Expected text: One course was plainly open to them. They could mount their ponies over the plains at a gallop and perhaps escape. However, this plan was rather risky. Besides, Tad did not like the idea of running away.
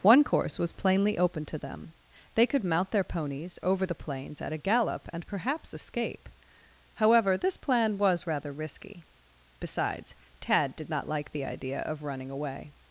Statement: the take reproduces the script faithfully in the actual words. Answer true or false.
true